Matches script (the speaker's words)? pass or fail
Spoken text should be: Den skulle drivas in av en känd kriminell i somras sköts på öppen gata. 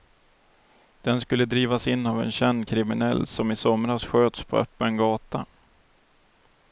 fail